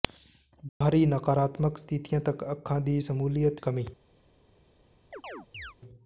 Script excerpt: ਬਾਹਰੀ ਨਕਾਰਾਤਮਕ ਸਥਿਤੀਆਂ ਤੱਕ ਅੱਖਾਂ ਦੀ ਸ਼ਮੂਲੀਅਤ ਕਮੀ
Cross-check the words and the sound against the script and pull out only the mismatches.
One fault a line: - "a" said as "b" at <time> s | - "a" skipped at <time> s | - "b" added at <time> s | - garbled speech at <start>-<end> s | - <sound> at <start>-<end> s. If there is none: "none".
- dropout at 0.7-0.8 s
- chirp at 5.1-5.7 s